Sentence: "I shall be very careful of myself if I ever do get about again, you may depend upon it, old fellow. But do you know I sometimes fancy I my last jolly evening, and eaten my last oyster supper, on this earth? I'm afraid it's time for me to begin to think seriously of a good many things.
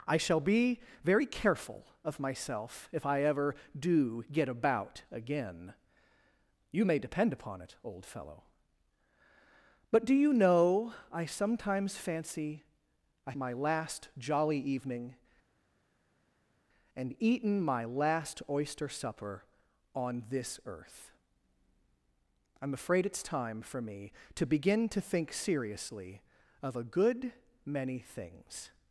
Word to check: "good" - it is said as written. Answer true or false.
true